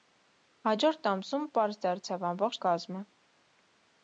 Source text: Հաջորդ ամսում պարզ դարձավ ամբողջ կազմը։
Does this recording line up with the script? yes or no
yes